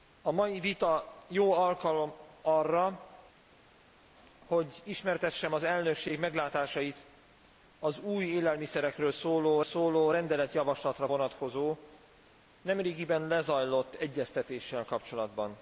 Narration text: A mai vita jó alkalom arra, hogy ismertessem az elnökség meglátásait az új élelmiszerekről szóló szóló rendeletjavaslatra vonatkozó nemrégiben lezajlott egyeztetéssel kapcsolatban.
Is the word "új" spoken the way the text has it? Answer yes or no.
yes